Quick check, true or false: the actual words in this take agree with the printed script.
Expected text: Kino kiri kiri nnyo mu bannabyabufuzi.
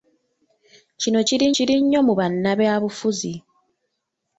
true